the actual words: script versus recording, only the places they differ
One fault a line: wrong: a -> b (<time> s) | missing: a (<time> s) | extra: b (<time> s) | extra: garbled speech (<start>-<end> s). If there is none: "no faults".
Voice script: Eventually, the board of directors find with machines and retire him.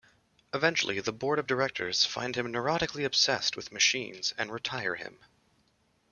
extra: him neurotically obsessed (2.4 s)